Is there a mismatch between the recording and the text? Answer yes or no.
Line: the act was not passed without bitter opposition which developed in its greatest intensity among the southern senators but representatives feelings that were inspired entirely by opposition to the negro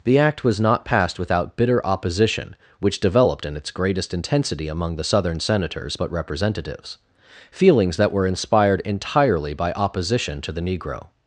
no